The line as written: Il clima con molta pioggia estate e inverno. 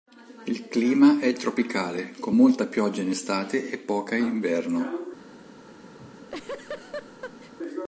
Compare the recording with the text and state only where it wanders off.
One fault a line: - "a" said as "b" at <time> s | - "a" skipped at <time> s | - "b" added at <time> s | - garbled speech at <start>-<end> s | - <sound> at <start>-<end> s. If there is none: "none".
- "è tropicale" added at 1.2 s
- "in" added at 3.0 s
- "poca in" added at 3.8 s
- laugh at 6.0-7.5 s